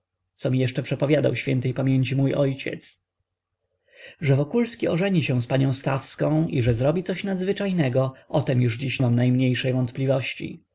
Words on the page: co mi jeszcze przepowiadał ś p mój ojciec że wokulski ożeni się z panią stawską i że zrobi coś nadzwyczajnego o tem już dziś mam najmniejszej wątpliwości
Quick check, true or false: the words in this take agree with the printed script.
true